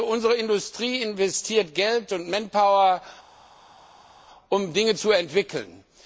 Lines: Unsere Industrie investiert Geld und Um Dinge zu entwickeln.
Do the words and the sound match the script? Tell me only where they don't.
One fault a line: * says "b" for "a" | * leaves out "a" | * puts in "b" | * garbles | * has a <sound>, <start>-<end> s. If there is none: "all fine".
* puts in "Manpower"